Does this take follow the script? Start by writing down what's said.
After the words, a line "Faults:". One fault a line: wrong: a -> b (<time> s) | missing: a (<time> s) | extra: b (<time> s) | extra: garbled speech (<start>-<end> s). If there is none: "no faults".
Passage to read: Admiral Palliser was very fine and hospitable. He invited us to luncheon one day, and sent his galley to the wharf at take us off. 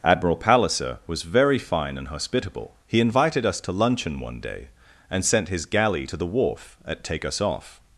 Admiral Palliser was very fine and hospitable. He invited us to luncheon one day, and sent his galley to the wharf at take us off.
Faults:
no faults